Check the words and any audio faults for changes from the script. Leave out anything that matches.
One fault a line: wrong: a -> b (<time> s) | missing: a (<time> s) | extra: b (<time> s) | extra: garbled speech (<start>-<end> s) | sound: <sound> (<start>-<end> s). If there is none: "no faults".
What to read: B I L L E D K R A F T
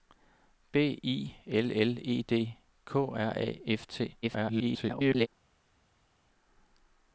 extra: garbled speech (4.2-5.3 s)